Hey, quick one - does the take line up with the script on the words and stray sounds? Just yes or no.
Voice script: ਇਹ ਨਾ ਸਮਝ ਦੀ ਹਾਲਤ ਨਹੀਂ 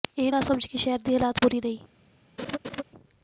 no